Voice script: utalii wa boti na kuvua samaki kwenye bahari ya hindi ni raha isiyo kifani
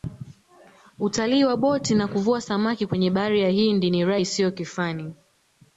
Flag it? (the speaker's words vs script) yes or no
no